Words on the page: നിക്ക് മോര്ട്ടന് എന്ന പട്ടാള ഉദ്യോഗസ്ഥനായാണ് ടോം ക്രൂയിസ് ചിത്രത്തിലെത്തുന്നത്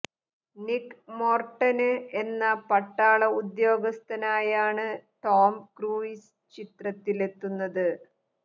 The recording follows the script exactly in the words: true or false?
true